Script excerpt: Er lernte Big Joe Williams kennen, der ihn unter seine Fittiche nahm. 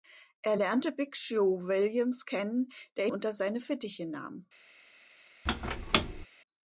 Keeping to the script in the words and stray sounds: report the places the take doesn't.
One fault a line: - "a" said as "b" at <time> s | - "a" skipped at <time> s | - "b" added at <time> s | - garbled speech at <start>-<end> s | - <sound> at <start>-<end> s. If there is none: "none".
- "ihn" skipped at 3.1 s
- squeak at 5.5-6.3 s